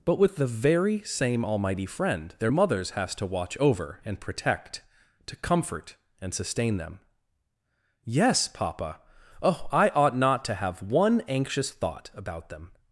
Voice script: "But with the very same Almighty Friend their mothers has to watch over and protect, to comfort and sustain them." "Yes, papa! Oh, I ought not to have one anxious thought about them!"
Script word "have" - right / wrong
right